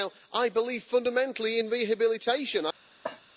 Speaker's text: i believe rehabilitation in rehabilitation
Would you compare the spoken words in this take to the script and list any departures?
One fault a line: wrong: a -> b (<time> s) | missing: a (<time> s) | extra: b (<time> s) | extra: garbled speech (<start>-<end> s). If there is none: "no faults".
wrong: rehabilitation -> fundamentally (0.8 s)